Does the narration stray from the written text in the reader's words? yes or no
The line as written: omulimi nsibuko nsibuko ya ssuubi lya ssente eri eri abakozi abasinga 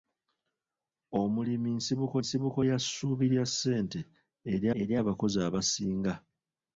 no